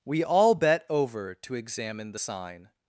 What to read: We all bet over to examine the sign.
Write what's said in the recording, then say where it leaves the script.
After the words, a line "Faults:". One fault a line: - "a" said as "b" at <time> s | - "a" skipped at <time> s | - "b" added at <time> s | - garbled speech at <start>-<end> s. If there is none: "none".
We all bet over to examine the sign.
Faults:
none